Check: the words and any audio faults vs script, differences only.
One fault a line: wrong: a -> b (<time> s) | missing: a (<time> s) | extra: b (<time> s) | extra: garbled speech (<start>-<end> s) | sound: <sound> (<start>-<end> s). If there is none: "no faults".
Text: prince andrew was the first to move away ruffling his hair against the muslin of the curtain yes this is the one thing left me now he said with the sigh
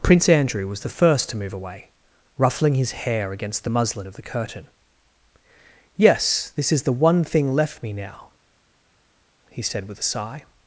wrong: the -> a (10.0 s)